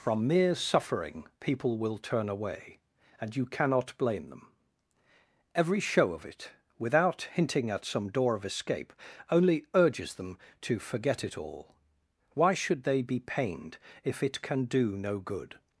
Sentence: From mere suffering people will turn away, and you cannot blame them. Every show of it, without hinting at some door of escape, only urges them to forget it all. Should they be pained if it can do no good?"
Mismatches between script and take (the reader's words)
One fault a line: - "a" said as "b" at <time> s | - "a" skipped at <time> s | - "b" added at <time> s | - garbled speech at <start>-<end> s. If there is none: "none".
- "Why" added at 12.3 s